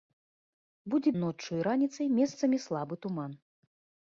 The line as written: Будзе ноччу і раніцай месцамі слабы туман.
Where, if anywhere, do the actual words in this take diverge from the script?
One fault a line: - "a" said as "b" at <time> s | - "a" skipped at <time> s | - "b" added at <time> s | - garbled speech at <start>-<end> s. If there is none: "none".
none